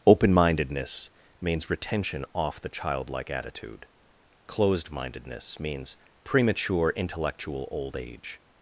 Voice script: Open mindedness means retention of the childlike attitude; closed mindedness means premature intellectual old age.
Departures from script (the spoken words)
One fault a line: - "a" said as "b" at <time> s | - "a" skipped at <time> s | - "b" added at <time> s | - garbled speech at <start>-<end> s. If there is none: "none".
- "of" said as "off" at 2.3 s